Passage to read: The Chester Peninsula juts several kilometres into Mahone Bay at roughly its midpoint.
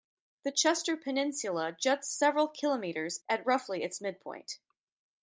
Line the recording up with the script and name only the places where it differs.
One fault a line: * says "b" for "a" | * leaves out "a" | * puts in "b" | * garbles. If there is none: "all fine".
* leaves out "into Mahone Bay"